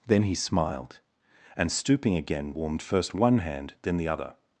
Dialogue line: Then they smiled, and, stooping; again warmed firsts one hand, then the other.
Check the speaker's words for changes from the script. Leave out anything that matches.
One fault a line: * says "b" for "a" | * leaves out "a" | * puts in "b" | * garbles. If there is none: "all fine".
* says "he" for "they"
* says "first" for "firsts"